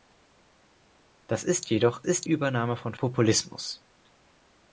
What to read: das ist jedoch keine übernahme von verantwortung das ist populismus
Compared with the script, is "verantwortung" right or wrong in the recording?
wrong